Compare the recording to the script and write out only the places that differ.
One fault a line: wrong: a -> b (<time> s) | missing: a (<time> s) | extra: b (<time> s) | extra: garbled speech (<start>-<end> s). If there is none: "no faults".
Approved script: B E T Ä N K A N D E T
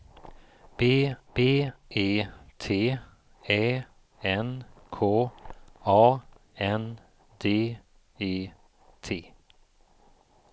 extra: b (1.3 s)